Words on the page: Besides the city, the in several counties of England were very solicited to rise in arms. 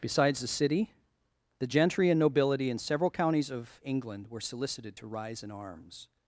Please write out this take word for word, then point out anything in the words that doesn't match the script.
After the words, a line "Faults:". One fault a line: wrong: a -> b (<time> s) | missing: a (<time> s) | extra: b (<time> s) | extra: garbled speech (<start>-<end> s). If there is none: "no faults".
Besides the city, the gentry and nobility in several counties of England were solicited to rise in arms.
Faults:
extra: gentry and nobility (1.7 s)
missing: very (4.4 s)